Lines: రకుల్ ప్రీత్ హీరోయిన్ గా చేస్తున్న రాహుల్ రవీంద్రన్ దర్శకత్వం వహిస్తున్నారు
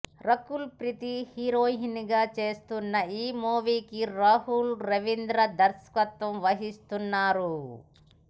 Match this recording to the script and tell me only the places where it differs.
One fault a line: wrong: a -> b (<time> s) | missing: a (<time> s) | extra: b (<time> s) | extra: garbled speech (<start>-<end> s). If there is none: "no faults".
extra: ఈ మూవీకి (3.2 s)